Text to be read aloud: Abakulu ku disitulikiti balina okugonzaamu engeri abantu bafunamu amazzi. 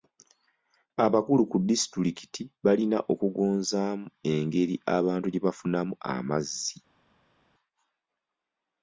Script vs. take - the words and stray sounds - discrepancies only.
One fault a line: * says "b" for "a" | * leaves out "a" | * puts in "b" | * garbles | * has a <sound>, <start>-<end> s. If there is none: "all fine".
* puts in "gye"